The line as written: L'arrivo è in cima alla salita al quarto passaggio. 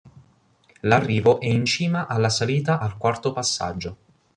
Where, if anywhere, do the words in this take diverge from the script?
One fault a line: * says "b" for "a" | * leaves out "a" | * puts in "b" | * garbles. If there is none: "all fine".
all fine